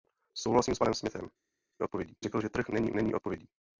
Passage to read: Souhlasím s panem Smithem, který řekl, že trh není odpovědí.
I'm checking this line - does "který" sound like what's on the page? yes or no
no